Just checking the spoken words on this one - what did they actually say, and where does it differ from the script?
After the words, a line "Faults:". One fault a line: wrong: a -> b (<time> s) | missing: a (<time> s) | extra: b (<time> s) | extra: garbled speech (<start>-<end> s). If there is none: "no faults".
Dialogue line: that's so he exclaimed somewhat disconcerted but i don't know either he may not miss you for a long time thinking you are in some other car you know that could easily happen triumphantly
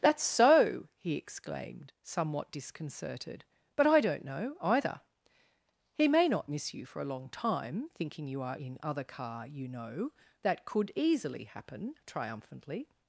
that's so he exclaimed somewhat disconcerted but i don't know either he may not miss you for a long time thinking you are in other car you know that could easily happen triumphantly
Faults:
missing: some (8.8 s)